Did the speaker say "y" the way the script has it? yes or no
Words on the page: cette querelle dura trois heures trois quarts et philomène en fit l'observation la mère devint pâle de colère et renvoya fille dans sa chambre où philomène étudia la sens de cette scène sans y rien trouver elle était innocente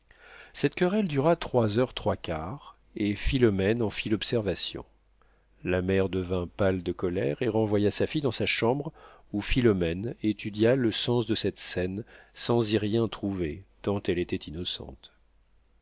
yes